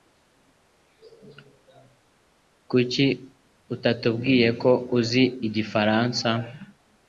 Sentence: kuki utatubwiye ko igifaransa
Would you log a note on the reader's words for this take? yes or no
yes